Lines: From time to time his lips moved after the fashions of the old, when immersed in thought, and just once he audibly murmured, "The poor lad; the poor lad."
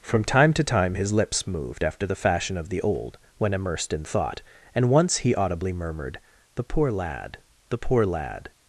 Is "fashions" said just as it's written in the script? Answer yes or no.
no